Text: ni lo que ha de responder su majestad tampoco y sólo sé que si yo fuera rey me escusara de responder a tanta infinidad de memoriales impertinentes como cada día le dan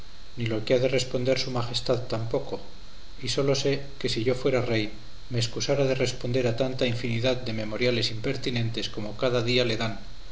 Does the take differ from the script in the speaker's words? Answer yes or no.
no